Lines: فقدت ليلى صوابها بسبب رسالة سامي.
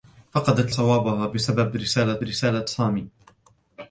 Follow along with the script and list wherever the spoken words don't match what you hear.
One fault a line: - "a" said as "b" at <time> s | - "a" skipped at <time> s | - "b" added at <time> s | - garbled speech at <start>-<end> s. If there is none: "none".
- "ليلى" skipped at 0.7 s
- "رسالة" added at 2.2 s